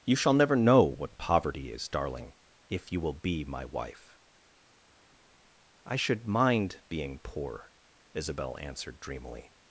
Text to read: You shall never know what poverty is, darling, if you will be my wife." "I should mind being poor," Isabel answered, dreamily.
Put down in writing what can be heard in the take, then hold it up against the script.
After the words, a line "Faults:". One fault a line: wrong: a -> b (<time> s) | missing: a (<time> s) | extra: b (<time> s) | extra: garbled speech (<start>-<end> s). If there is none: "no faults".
You shall never know what poverty is, darling, if you will be my wife." "I should mind being poor," Isabel answered, dreamily.
Faults:
no faults